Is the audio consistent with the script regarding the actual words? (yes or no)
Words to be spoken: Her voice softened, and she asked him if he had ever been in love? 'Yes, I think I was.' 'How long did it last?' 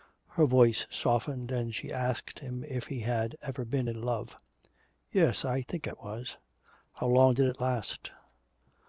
yes